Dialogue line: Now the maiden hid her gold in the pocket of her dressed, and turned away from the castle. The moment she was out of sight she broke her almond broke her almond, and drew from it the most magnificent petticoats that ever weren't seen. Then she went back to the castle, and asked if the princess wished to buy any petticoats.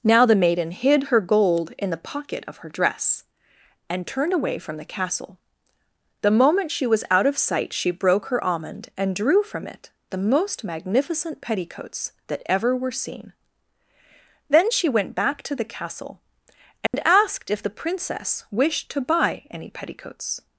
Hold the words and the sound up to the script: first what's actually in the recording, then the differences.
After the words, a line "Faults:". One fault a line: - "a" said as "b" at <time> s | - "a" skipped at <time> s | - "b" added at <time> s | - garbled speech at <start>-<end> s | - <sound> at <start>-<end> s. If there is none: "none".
Now the maiden hid her gold in the pocket of her dress, and turned away from the castle. The moment she was out of sight she broke her almond, and drew from it the most magnificent petticoats that ever were seen. Then she went back to the castle, and asked if the princess wished to buy any petticoats.
Faults:
- "dressed" said as "dress" at 2.7 s
- "broke her almond" skipped at 8.9 s
- "weren't" said as "were" at 12.7 s
- dropout at 16.9-16.9 s